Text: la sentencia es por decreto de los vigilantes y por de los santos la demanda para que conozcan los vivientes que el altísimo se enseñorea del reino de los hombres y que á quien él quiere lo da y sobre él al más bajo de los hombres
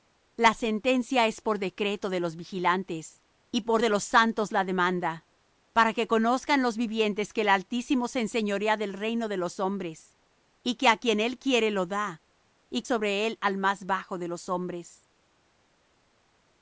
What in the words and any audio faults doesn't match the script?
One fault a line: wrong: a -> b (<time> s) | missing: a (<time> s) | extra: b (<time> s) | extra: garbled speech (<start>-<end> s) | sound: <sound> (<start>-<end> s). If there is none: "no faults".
no faults